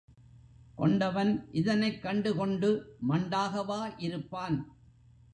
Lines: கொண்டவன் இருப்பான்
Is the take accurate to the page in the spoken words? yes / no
no